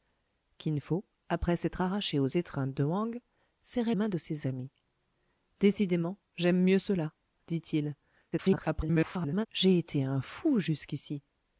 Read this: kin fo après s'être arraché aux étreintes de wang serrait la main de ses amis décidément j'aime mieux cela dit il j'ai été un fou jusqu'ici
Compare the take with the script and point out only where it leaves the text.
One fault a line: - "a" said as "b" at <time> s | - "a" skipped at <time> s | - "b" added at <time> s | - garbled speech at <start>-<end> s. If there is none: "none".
- "la" skipped at 3.9 s
- garbled speech at 8.3-9.5 s